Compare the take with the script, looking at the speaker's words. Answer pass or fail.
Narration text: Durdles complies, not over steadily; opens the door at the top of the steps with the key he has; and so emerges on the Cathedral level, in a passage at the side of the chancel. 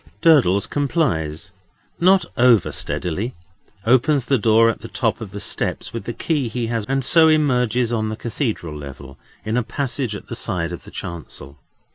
pass